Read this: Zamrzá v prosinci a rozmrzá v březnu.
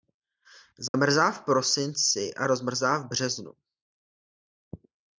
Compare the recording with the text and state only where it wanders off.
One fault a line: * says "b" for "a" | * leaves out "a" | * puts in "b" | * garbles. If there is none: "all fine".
all fine